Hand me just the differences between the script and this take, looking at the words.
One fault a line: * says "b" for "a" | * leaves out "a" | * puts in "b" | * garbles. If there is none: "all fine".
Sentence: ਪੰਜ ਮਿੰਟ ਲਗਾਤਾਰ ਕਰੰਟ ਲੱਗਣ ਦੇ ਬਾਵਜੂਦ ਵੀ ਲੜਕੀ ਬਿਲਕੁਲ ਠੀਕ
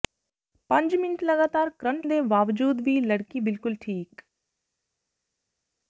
* leaves out "ਲੱਗਣ"